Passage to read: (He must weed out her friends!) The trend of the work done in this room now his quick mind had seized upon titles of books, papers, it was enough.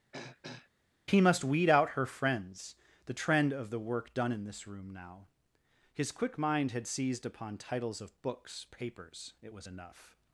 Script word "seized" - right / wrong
right